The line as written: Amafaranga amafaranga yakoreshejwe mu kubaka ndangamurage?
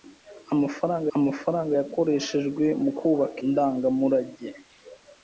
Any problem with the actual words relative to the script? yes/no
no